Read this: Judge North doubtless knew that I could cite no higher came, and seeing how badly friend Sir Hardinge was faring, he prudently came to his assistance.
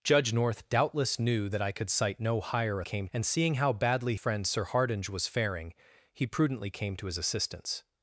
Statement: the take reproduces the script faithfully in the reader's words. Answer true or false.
true